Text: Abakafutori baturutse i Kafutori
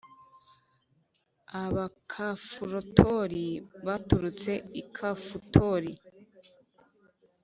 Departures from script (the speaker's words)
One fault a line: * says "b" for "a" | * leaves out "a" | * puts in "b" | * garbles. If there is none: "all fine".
all fine